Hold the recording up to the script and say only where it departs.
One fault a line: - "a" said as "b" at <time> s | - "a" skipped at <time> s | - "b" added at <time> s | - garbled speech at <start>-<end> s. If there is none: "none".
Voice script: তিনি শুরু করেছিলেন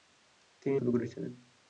none